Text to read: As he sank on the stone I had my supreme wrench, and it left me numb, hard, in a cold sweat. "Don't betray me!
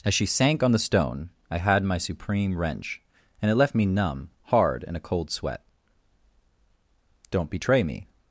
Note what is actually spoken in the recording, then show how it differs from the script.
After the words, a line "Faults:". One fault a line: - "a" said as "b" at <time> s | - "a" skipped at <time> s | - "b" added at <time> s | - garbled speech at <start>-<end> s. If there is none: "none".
As she sank on the stone I had my supreme wrench, and it left me numb, hard, in a cold sweat. "Don't betray me!
Faults:
- "he" said as "she" at 0.1 s